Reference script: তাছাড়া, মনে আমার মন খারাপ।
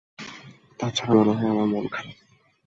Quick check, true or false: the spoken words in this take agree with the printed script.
false